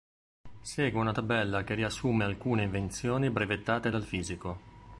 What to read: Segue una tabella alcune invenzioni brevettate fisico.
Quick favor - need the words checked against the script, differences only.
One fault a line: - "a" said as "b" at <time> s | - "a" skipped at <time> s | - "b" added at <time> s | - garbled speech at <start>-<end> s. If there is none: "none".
- "che riassume" added at 1.6 s
- "dal" added at 3.9 s